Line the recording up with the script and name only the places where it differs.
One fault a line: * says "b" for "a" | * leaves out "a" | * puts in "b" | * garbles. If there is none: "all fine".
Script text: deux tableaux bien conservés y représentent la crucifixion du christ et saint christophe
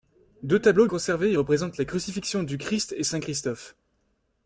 * leaves out "bien"